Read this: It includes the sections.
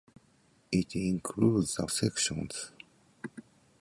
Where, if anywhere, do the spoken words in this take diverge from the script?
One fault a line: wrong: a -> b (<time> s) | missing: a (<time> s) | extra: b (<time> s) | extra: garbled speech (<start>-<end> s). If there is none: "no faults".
no faults